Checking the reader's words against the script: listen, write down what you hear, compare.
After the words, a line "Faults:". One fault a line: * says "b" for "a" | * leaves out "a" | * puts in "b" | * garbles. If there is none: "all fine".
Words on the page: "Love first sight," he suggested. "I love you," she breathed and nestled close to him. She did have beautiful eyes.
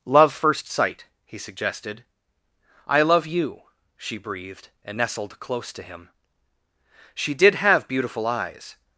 "Love first sight," he suggested. "I love you," she breathed and nestled close to him. She did have beautiful eyes.
Faults:
all fine